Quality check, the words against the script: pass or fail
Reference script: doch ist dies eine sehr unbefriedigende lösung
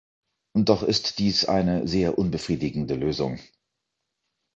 pass